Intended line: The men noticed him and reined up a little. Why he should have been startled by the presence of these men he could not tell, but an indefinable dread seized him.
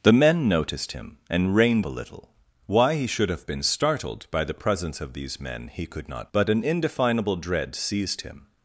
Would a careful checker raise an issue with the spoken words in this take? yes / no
yes